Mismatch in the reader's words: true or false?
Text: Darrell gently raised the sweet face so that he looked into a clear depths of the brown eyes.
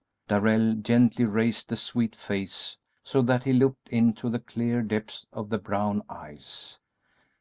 true